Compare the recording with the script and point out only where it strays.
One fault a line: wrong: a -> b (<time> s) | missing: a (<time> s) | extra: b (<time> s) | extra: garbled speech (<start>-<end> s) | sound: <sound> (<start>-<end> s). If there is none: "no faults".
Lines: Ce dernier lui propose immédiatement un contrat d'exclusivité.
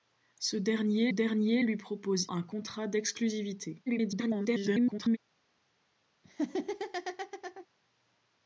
extra: dernier (1.1 s)
missing: immédiatement (2.3 s)
extra: garbled speech (3.9-5.2 s)
sound: laugh (6.2-7.7 s)